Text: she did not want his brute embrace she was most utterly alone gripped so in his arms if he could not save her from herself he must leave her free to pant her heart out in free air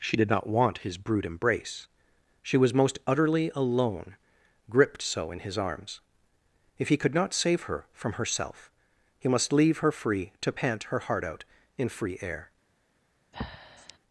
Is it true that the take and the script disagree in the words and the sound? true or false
true